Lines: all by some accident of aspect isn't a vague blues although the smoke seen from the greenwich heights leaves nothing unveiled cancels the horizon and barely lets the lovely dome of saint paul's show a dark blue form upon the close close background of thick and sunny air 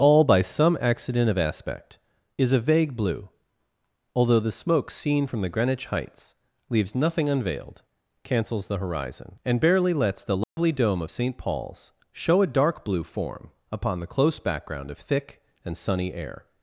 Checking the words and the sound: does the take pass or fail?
fail